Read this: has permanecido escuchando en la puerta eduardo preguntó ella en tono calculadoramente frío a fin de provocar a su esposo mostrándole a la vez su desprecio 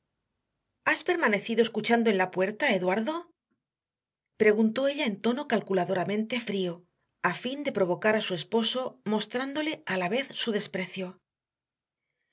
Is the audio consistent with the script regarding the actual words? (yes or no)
yes